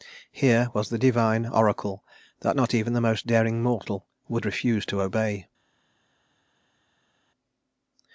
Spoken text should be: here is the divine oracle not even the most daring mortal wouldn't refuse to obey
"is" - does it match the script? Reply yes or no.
no